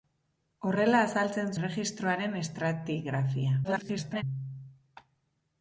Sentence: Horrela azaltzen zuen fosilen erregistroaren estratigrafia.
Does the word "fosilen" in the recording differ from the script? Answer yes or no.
yes